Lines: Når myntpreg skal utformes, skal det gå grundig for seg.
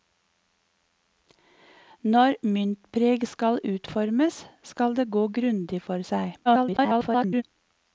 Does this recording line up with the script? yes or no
no